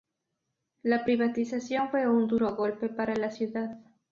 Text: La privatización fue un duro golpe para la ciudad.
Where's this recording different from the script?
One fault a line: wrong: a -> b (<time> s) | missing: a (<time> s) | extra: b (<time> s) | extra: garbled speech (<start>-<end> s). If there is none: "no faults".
no faults